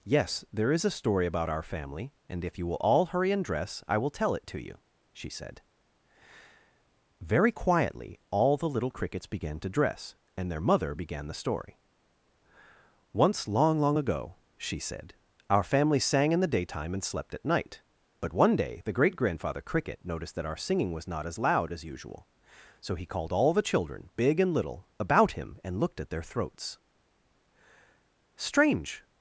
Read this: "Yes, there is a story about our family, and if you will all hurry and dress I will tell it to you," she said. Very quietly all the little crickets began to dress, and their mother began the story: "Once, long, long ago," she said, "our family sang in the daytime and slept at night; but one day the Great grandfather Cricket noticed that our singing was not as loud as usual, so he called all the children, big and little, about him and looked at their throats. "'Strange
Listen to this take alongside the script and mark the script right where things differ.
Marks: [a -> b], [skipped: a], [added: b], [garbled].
"Yes, there is a story about our family, and if you will all hurry and dress I will tell it to you," she said. Very quietly all the little crickets began to dress, and their mother began the story: "Once, long, long ago," she said, "our family sang in the daytime and slept at night; but one day the Great grandfather Cricket noticed that our singing was not as loud as usual, so he called all the children, big and little, about him and looked at their throats. "'Strange